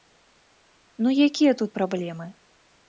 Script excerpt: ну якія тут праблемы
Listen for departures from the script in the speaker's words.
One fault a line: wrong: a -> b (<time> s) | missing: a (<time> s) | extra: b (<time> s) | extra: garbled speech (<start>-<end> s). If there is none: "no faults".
no faults